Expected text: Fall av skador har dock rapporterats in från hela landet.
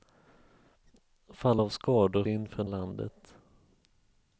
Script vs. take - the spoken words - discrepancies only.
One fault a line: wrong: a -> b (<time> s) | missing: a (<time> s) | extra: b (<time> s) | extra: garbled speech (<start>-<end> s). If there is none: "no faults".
missing: har dock rapporterats (2.2 s)
missing: hela (2.7 s)